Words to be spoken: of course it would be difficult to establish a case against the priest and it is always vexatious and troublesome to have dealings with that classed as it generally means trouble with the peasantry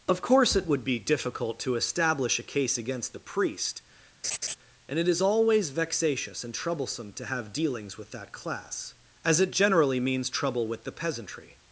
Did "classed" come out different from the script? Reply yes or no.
yes